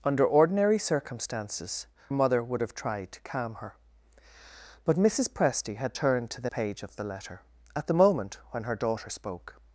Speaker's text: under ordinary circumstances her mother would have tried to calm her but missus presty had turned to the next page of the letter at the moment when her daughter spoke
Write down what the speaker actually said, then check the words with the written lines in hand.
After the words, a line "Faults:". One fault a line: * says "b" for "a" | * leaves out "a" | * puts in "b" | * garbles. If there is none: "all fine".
under ordinary circumstances mother would have tried to calm her but missus presty had turned to the page of the letter at the moment when her daughter spoke
Faults:
* leaves out "her"
* leaves out "next"